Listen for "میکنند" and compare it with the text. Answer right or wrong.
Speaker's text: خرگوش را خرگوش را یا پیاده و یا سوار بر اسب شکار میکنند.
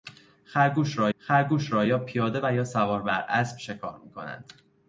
right